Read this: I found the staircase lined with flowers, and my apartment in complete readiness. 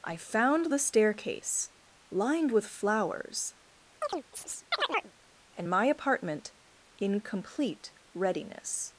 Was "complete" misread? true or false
false